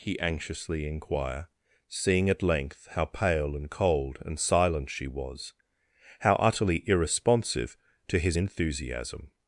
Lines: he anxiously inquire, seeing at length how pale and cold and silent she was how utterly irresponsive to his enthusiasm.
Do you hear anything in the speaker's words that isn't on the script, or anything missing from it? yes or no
no